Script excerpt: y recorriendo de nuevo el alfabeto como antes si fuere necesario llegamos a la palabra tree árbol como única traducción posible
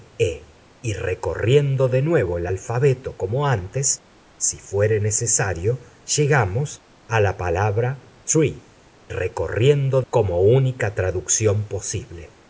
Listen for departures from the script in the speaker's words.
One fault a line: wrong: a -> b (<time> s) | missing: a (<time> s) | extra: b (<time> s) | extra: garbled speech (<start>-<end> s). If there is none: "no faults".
wrong: árbol -> recorriendo (9.1 s)